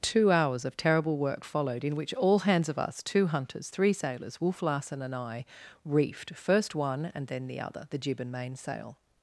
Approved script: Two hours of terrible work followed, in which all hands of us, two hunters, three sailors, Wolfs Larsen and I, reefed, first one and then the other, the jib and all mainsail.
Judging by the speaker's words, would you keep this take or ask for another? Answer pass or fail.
fail